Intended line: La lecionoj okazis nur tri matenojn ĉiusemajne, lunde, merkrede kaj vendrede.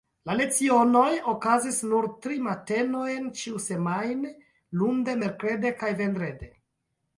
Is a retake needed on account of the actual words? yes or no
no